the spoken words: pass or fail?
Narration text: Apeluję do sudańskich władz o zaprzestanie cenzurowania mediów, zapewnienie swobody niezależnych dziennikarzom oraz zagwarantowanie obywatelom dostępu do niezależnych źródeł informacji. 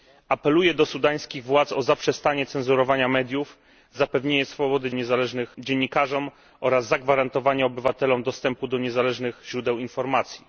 pass